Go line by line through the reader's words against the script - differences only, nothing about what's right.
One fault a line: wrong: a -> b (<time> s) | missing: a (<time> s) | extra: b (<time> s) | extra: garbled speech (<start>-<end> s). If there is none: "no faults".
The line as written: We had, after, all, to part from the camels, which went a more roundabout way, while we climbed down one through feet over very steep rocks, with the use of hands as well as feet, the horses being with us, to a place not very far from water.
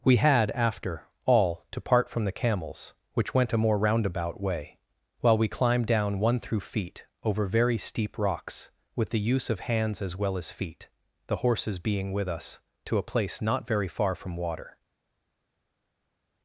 no faults